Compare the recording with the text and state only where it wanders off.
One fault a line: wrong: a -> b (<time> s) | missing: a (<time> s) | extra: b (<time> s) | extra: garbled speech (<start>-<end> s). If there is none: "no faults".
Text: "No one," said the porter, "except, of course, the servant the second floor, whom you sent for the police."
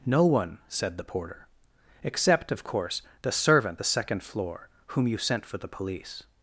no faults